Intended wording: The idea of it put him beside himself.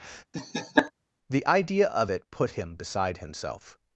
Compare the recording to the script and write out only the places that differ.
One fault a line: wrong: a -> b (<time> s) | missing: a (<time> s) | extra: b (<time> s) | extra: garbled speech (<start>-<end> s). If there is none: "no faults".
no faults